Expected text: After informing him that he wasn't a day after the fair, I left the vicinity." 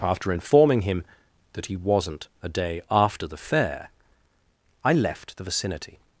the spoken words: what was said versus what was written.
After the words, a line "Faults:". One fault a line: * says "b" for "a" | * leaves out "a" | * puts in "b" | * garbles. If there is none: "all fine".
After informing him that he wasn't a day after the fair, I left the vicinity."
Faults:
all fine